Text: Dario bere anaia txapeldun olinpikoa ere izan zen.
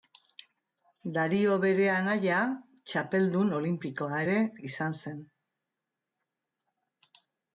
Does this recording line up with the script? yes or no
yes